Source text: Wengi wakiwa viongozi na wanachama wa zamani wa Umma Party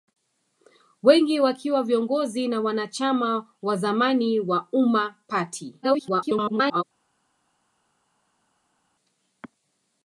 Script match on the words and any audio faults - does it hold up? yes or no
no